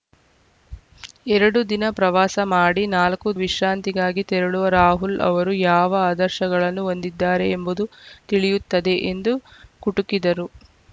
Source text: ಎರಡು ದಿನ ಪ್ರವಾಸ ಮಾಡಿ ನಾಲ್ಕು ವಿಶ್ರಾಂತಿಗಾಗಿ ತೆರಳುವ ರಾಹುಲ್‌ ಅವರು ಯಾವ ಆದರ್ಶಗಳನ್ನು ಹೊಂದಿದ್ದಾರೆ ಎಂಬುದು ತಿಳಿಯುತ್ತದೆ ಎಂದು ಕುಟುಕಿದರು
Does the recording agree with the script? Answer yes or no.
yes